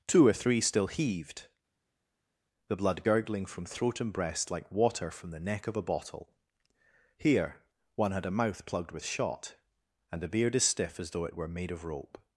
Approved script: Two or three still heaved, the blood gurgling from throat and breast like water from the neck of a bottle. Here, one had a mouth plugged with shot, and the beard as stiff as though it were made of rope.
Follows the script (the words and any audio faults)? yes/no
yes